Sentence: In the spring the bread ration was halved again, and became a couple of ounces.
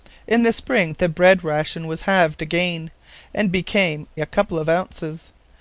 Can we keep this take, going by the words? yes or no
yes